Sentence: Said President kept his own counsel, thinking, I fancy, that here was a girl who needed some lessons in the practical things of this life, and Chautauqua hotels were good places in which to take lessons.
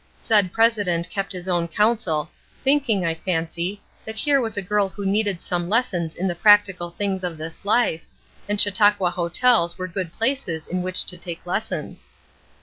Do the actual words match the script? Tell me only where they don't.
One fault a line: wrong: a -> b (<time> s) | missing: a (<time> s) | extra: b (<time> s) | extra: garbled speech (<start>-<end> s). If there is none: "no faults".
no faults